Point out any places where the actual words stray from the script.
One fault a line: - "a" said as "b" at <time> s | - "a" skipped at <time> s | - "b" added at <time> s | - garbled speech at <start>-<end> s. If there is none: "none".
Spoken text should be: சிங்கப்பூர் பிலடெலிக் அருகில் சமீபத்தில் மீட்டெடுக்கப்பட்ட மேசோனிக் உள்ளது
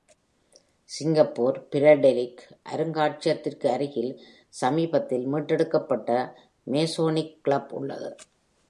- "அருங்காட்சியகத்திற்கு" added at 2.7 s
- "கிளப்" added at 7.4 s